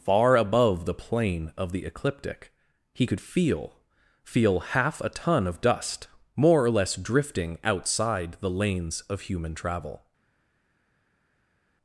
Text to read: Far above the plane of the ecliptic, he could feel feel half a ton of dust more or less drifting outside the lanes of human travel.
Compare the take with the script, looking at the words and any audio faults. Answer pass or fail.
pass